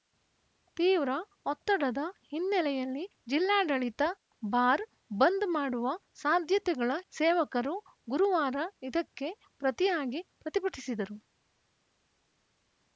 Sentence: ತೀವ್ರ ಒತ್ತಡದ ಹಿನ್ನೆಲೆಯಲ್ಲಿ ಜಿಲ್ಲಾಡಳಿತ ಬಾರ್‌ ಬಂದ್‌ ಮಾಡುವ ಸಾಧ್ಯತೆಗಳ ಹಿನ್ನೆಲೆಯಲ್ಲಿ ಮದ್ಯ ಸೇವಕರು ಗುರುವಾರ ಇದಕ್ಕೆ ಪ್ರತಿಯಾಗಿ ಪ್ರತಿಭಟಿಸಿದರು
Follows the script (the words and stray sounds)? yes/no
no